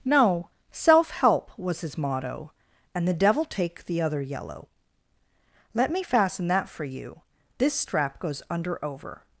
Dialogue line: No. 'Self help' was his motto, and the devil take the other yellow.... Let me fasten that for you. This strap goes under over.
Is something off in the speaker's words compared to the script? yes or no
no